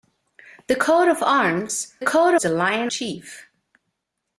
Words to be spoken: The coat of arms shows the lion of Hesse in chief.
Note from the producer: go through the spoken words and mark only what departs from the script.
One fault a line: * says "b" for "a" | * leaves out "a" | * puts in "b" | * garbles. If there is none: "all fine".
* says "coat" for "shows"
* leaves out "of Hesse in"